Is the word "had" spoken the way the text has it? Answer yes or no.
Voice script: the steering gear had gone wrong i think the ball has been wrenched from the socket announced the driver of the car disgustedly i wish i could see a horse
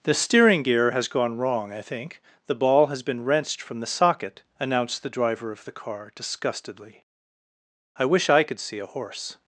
no